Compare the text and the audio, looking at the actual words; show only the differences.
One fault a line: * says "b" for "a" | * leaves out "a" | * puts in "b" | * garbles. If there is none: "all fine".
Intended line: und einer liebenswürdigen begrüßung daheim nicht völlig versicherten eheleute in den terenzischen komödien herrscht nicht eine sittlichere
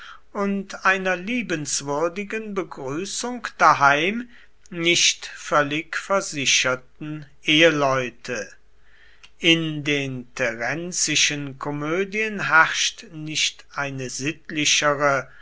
all fine